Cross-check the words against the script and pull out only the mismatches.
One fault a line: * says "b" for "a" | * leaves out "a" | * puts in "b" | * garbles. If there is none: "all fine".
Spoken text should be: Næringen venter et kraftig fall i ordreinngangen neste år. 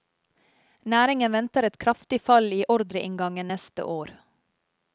all fine